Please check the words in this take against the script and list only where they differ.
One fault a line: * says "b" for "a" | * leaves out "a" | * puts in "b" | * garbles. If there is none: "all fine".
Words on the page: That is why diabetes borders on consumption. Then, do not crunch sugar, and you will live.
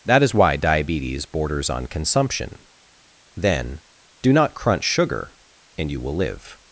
all fine